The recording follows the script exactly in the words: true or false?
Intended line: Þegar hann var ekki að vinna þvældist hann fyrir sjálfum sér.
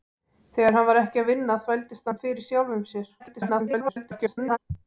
false